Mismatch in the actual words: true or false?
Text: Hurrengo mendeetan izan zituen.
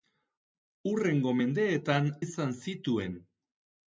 false